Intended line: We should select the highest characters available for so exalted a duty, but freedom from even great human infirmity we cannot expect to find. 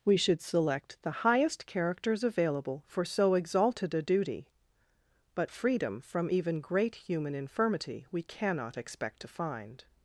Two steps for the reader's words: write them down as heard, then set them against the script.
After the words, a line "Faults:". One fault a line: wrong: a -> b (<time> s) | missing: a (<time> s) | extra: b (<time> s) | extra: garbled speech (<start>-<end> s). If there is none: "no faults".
We should select the highest characters available for so exalted a duty, but freedom from even great human infirmity we cannot expect to find.
Faults:
no faults